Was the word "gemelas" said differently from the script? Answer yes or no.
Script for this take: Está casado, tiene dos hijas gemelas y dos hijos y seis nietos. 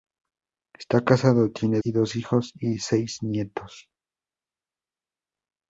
yes